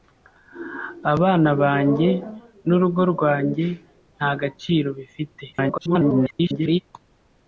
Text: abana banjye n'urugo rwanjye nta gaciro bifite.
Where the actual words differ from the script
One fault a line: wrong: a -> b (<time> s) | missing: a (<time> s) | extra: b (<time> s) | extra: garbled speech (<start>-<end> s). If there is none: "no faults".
extra: garbled speech (5.5-6.8 s)